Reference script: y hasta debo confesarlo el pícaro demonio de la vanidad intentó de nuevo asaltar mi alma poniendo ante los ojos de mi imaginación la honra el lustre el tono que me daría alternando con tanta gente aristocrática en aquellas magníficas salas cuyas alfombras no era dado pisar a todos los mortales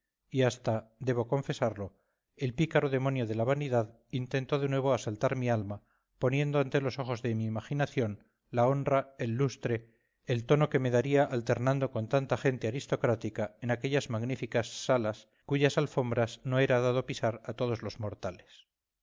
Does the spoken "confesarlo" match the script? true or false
true